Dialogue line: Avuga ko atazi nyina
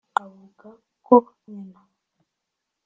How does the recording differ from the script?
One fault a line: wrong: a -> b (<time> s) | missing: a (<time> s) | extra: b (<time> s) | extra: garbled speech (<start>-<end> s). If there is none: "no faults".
missing: atazi (1.1 s)